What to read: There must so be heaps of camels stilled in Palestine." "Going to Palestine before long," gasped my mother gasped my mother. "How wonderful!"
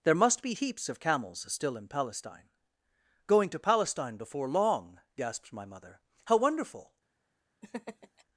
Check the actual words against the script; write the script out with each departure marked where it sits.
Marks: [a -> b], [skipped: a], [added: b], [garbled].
There must [skipped: so] be heaps of camels [stilled -> still] in Palestine." "Going to Palestine before long," gasped my mother [skipped: gasped my mother.] "How wonderful!"